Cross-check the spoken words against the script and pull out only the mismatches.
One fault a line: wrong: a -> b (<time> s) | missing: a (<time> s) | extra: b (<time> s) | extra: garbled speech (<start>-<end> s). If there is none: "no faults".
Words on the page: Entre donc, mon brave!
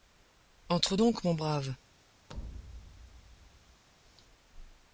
no faults